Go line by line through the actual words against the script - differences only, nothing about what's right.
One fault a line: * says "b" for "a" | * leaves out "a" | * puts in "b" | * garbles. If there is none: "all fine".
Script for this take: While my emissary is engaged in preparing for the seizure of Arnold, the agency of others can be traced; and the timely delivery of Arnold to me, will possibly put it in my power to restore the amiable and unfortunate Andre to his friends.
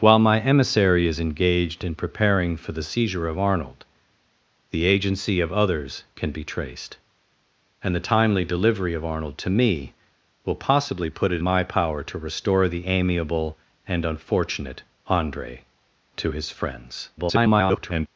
* leaves out "in"
* garbles